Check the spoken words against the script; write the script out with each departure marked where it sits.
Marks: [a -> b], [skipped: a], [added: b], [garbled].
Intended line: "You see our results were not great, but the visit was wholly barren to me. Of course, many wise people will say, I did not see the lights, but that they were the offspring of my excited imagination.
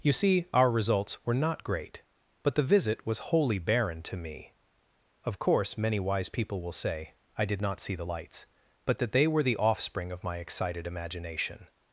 "You see our results were not great, but the visit was wholly barren to me. Of course, many wise people will say, I did not see the lights, but that they were the offspring of my excited imagination.